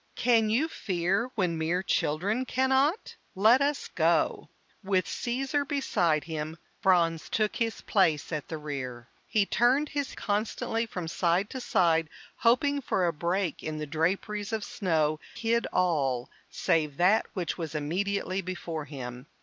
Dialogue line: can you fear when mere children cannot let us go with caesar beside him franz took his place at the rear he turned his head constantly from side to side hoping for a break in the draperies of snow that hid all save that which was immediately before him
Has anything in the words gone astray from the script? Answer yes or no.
yes